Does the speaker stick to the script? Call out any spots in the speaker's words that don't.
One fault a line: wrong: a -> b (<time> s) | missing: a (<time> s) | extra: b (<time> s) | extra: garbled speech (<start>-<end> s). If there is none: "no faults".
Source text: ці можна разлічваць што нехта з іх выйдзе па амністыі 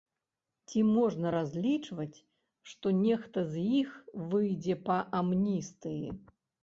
no faults